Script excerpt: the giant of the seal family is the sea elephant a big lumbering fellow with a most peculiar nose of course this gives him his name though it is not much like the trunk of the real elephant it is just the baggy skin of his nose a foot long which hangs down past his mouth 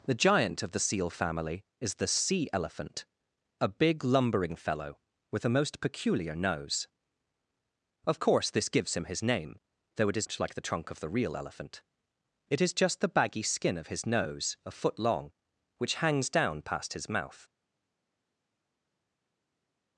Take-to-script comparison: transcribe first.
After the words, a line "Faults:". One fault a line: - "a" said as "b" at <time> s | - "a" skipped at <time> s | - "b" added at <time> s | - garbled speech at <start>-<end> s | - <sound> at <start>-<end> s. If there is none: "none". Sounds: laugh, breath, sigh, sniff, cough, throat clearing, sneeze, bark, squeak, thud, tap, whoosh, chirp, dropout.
the giant of the seal family is the sea elephant a big lumbering fellow with a most peculiar nose of course this gives him his name though it is much like the trunk of the real elephant it is just the baggy skin of his nose a foot long which hangs down past his mouth
Faults:
- "not" skipped at 10.3 s